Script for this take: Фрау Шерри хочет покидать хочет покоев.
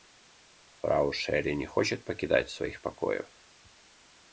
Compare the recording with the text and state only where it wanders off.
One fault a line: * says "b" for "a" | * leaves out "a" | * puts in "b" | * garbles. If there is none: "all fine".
* puts in "не"
* says "своих" for "хочет"